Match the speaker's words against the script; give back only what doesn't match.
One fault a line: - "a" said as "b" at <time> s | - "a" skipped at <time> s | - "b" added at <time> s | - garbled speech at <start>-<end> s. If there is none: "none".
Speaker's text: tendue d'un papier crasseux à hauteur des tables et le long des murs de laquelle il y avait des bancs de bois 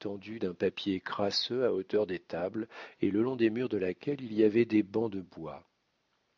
none